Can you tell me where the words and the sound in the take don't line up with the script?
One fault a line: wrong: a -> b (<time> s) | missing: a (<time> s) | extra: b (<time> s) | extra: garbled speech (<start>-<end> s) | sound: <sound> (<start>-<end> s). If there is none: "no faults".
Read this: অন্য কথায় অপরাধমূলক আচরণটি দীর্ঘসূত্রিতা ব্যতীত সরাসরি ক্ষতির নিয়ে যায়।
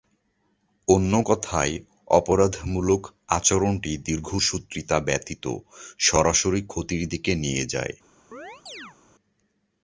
extra: দিকে (7.1 s)
sound: chirp (8.3-9.0 s)